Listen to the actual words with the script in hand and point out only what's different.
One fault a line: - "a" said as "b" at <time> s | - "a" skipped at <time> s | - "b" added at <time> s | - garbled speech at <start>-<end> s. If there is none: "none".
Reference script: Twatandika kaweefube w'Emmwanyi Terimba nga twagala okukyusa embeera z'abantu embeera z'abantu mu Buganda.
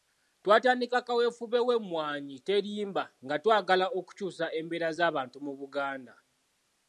- "embeera z'abantu" skipped at 5.4 s